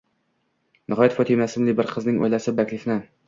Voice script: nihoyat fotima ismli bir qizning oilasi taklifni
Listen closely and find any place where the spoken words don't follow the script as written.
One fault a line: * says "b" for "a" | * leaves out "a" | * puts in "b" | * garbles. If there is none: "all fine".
all fine